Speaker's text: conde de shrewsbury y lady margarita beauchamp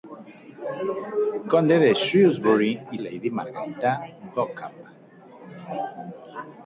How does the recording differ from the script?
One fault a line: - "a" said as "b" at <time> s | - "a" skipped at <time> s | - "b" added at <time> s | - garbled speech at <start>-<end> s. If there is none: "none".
none